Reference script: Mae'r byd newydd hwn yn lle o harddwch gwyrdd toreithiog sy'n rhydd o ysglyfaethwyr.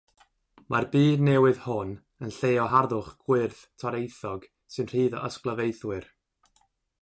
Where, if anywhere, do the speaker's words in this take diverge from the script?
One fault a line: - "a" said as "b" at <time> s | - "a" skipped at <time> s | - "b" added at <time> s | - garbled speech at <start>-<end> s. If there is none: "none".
none